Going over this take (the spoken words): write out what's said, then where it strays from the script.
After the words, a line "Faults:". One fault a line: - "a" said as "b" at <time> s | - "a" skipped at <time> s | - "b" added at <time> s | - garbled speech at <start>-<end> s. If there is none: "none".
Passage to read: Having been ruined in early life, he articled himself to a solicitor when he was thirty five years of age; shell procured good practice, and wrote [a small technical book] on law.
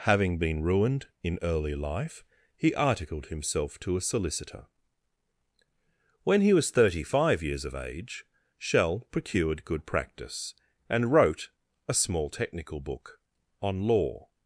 Having been ruined in early life, he articled himself to a solicitor when he was thirty five years of age; shell procured good practice, and wrote [a small technical book] on law.
Faults:
none